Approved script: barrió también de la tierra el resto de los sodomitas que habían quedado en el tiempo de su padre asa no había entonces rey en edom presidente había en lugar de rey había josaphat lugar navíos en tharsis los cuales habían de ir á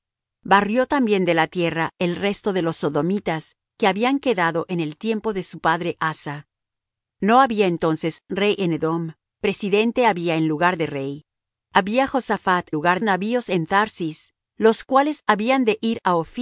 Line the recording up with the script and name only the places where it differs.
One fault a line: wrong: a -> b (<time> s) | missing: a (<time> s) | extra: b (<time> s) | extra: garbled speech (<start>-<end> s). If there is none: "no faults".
no faults